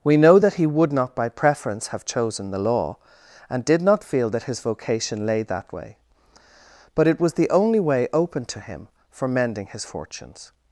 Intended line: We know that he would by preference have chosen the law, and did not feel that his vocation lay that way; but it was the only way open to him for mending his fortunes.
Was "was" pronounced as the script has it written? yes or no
yes